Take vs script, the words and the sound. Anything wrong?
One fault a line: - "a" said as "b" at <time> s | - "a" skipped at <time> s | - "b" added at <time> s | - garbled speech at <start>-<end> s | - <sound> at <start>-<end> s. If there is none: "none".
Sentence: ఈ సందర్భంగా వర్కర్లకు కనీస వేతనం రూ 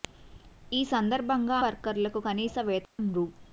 - dropout at 2.8-3.0 s